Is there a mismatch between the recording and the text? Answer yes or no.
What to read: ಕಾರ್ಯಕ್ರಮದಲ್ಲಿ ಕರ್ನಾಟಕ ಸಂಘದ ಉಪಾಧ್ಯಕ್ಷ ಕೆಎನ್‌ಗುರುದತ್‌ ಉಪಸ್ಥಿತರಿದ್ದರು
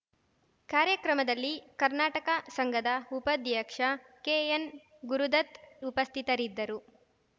no